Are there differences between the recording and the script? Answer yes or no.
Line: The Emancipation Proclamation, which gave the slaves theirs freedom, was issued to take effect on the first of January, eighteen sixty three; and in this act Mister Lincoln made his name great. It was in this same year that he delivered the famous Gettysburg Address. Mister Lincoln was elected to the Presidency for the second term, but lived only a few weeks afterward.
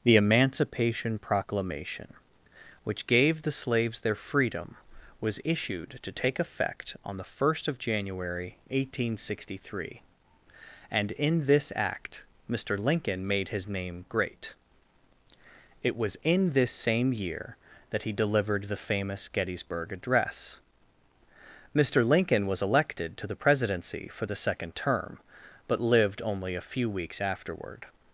yes